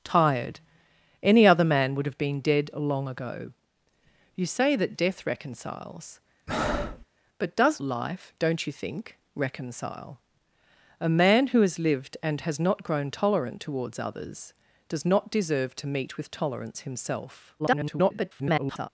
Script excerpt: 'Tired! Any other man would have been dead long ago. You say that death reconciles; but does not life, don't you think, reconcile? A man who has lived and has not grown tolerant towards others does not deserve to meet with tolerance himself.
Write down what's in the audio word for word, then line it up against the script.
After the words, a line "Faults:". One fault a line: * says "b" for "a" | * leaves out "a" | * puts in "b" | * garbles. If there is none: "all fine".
'Tired! Any other man would have been dead long ago. You say that death reconciles; but does life, don't you think, reconcile? A man who has lived and has not grown tolerant towards others does not deserve to meet with tolerance himself. [garbled]
Faults:
* leaves out "not"
* garbles